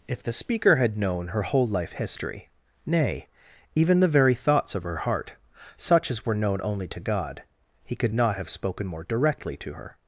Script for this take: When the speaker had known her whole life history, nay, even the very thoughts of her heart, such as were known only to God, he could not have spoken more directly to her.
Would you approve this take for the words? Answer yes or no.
no